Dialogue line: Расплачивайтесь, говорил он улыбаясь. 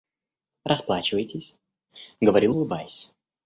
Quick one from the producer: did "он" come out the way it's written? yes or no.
no